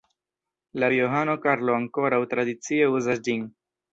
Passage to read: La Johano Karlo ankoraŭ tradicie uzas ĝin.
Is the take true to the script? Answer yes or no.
yes